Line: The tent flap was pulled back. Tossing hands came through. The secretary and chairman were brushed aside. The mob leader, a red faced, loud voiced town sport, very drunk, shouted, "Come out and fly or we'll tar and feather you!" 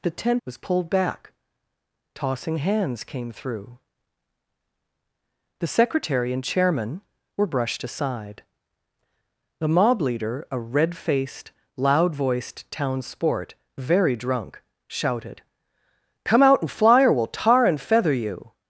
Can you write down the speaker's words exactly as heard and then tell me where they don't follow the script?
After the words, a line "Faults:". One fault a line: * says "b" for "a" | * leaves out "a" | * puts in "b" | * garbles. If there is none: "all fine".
The tent was pulled back. Tossing hands came through. The secretary and chairman were brushed aside. The mob leader, a red faced, loud voiced town sport, very drunk, shouted, "Come out and fly or we'll tar and feather you!"
Faults:
* leaves out "flap"